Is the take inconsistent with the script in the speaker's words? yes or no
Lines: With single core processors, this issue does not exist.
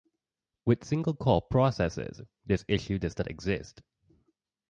no